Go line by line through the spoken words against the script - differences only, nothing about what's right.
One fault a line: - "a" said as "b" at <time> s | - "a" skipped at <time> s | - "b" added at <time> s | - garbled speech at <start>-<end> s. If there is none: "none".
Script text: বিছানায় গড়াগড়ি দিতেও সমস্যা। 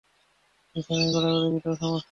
none